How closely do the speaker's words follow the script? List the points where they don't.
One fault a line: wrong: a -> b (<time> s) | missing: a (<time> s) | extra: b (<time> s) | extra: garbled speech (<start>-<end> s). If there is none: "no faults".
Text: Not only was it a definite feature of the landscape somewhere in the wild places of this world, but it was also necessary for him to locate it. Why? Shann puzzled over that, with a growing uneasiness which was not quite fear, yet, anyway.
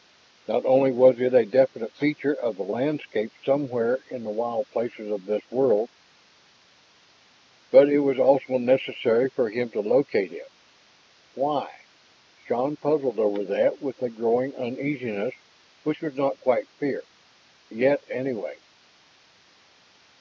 no faults